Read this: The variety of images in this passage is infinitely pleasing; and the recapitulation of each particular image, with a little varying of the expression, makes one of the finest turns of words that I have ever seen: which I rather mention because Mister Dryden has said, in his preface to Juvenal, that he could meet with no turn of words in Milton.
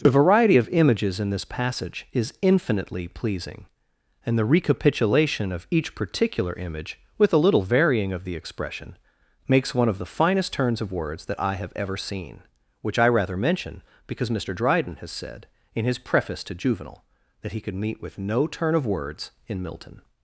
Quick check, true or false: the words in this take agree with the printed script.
true